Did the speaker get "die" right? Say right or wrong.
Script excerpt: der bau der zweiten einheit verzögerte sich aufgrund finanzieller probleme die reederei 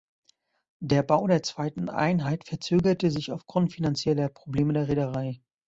wrong